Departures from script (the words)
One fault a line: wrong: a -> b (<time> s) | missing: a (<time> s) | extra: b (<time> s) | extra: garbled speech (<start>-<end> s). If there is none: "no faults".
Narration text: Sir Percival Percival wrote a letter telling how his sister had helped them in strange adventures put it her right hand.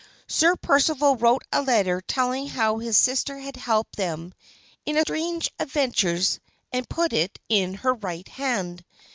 missing: Percival (1.1 s)
extra: and (6.7 s)
extra: in (7.5 s)